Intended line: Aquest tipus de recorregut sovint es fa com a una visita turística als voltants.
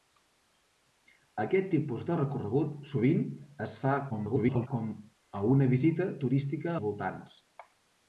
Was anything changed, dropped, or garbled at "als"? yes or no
yes